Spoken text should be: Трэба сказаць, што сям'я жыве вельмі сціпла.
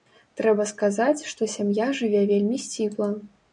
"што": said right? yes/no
yes